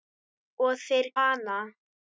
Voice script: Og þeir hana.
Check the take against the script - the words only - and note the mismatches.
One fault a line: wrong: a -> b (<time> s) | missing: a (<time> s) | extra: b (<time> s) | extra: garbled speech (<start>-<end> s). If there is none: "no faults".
no faults